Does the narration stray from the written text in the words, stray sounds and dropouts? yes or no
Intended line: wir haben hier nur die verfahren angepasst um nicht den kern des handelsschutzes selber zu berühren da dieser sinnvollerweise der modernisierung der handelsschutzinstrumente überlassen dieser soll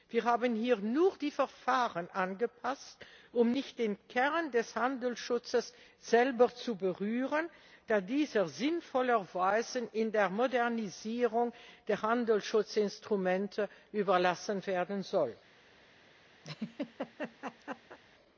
yes